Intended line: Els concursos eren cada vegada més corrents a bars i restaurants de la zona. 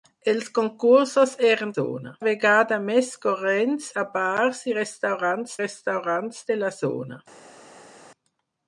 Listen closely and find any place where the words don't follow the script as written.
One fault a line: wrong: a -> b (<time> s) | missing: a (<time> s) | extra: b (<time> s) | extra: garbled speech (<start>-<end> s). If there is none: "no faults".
wrong: cada -> zona (1.7 s)
extra: restaurants (5.6 s)